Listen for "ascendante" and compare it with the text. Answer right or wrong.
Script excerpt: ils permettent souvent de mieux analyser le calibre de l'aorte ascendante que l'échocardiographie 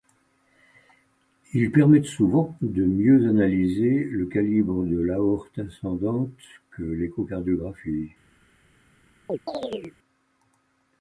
right